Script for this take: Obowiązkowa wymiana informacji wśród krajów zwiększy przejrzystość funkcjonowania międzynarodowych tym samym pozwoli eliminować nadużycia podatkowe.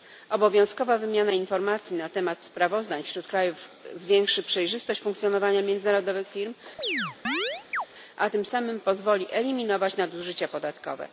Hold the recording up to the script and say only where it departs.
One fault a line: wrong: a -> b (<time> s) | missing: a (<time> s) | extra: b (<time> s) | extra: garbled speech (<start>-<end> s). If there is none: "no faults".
extra: na temat sprawozdań (1.9 s)
extra: firm a (6.3 s)